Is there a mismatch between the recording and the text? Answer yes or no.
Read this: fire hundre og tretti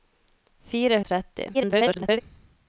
yes